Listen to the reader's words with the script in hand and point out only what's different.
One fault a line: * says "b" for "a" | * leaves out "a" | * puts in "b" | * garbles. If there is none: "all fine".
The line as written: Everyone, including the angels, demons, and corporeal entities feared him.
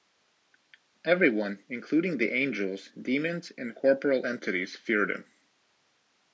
all fine